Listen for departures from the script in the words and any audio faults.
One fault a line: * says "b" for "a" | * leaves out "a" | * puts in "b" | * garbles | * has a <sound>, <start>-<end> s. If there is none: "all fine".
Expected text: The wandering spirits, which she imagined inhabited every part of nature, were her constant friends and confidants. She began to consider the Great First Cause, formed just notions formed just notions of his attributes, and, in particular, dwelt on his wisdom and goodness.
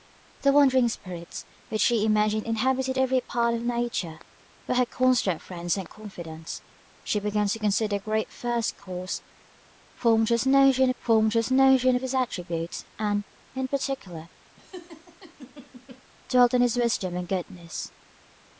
* has a laugh, 14.6-16.0 s